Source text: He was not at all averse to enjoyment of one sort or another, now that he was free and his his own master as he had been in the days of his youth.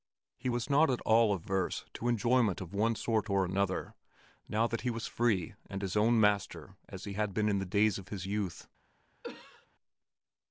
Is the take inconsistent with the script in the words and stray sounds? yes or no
yes